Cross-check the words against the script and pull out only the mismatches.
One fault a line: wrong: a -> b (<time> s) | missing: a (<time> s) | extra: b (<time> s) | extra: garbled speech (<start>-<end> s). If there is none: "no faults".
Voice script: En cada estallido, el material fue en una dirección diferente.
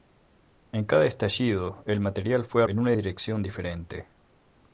no faults